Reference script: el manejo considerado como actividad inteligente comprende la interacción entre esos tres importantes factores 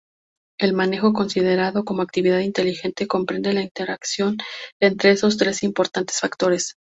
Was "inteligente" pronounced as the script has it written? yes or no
yes